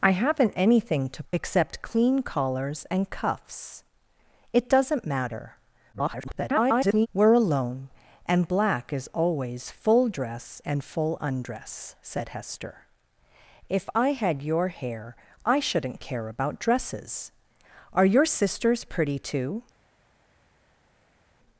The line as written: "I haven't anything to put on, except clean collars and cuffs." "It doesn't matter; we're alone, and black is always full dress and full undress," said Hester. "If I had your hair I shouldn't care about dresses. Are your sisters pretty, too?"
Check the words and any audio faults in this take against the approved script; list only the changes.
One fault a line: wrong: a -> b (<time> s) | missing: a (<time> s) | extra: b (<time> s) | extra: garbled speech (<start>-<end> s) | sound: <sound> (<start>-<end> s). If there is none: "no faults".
missing: put on (1.2 s)
extra: garbled speech (5.9-7.1 s)